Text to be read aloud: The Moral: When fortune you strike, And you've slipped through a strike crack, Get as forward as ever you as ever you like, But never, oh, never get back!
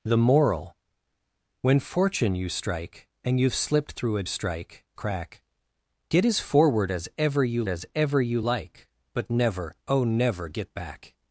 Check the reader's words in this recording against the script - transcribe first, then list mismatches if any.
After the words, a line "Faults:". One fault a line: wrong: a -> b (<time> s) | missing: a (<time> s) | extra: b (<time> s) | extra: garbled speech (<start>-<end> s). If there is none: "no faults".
The Moral: When fortune you strike, And you've slipped through a strike crack, Get as forward as ever you as ever you like, But never, oh, never get back!
Faults:
no faults